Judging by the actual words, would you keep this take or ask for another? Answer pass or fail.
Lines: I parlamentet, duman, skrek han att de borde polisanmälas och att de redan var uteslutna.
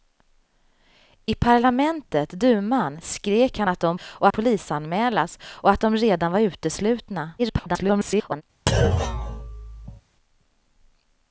fail